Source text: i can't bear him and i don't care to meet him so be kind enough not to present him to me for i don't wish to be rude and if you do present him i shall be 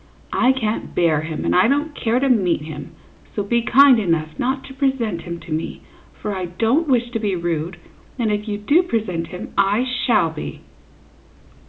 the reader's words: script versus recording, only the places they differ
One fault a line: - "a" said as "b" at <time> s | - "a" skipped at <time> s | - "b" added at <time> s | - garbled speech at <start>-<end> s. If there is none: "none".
none